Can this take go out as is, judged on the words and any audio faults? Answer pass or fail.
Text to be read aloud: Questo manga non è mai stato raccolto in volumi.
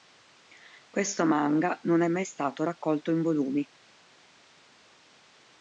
pass